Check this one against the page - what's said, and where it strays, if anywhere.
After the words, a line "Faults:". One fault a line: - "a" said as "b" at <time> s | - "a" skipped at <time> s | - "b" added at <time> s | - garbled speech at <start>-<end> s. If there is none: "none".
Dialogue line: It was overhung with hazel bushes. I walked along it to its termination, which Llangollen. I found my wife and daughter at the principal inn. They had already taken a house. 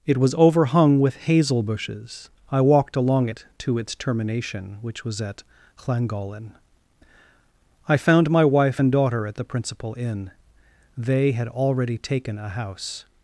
It was overhung with hazel bushes. I walked along it to its termination, which was at Llangollen. I found my wife and daughter at the principal inn. They had already taken a house.
Faults:
- "was at" added at 5.0 s